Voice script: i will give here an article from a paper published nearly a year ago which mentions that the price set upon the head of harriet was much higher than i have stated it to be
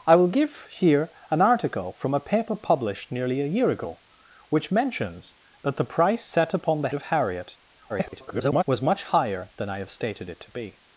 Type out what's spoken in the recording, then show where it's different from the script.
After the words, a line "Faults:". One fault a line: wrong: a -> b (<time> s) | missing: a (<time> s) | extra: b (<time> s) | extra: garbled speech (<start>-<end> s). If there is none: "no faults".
i will give here an article from a paper published nearly a year ago which mentions that the price set upon the of harriet [garbled] was much higher than i have stated it to be
Faults:
missing: head (6.9 s)
extra: garbled speech (7.9-8.6 s)